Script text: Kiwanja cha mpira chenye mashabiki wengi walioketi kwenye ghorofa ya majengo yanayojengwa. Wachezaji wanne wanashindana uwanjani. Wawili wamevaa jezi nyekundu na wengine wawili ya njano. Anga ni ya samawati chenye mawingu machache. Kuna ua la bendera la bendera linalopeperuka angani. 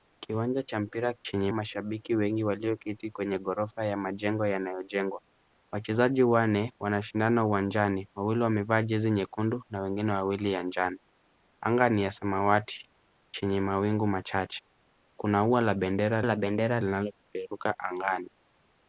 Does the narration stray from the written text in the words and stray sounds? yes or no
no